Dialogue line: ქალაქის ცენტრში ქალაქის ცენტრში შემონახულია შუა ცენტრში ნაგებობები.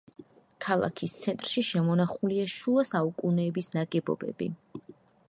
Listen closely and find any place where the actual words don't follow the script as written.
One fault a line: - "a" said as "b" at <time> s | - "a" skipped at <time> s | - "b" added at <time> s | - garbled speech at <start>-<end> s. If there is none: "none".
- "ქალაქის ცენტრში" skipped at 1.6 s
- "ცენტრში" said as "საუკუნეების" at 2.9 s